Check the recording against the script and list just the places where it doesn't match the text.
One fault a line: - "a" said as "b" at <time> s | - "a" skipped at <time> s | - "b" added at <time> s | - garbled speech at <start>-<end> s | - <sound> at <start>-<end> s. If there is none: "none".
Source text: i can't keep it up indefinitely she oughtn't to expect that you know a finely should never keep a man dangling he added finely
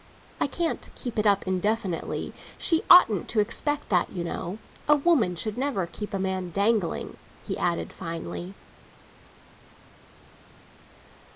- "finely" said as "woman" at 5.0 s